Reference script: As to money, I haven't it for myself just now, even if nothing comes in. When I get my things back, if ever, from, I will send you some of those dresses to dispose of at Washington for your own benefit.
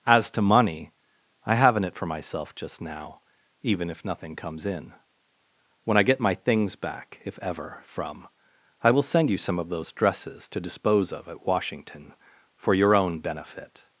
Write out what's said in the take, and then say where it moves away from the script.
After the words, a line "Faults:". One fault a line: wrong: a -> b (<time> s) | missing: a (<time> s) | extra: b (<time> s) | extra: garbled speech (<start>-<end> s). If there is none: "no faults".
As to money, I haven't it for myself just now, even if nothing comes in. When I get my things back, if ever, from, I will send you some of those dresses to dispose of at Washington for your own benefit.
Faults:
no faults